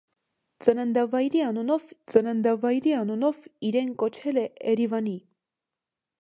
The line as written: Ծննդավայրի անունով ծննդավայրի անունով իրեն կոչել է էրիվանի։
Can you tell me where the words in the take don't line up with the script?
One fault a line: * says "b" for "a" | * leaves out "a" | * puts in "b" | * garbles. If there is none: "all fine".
all fine